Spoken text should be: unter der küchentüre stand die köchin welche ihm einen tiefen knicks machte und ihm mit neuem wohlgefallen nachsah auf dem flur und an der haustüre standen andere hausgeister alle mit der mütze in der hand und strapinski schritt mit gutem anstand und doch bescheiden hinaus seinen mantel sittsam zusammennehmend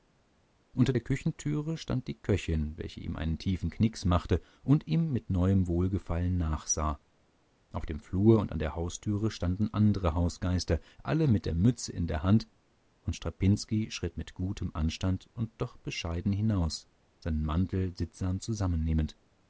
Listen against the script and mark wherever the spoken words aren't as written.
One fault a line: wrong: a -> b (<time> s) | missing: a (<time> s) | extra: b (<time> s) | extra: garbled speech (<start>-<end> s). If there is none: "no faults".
no faults